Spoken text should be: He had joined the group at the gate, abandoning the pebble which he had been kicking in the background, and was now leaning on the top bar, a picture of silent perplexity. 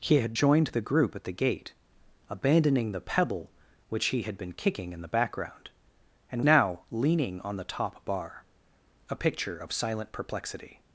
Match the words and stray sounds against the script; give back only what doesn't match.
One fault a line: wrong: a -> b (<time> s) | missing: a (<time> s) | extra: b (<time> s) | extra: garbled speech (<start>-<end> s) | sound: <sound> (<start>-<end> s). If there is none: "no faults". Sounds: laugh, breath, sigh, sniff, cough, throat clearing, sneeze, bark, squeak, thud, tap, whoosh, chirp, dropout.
missing: was (6.4 s)